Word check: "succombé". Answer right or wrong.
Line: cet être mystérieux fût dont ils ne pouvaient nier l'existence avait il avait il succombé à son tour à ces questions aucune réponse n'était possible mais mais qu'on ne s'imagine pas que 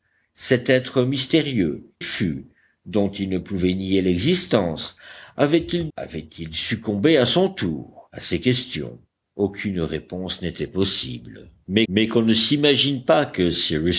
right